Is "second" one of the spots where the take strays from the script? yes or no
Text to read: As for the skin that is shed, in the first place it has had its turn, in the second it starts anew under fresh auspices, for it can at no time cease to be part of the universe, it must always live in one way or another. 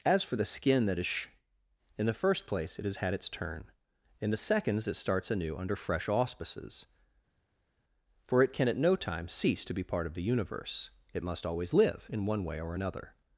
yes